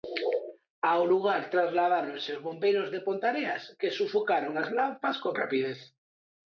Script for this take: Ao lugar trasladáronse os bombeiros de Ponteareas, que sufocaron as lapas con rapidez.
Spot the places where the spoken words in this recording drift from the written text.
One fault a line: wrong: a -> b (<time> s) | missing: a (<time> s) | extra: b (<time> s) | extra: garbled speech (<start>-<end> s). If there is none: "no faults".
no faults